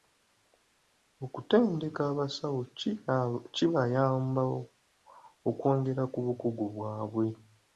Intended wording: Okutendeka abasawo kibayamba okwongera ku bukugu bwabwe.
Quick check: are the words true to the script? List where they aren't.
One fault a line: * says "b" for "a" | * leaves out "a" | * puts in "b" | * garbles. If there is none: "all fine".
all fine